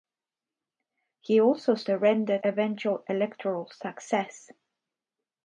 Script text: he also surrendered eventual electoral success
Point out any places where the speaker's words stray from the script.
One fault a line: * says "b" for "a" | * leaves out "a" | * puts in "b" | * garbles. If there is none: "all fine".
all fine